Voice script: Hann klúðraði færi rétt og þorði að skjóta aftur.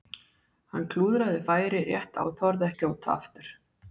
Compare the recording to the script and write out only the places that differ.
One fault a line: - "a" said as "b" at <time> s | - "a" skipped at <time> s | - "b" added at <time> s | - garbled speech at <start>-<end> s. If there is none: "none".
none